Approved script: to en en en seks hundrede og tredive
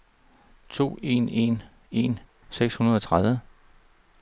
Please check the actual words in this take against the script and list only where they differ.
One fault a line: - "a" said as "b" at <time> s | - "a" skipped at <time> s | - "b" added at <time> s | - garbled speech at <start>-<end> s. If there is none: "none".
none